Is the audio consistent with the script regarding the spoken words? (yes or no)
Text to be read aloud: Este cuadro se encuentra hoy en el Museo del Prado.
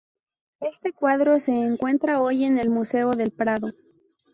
yes